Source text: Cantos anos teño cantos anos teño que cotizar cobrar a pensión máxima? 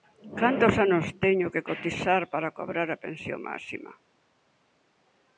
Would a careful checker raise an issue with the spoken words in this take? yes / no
yes